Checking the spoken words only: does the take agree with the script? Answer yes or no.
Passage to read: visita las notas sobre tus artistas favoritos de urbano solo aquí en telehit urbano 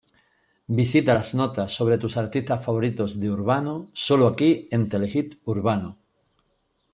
yes